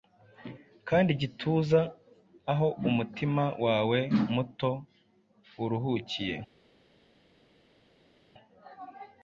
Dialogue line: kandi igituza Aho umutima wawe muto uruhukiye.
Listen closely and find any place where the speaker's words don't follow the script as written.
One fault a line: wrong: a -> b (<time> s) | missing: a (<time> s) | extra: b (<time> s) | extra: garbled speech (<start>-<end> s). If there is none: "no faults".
no faults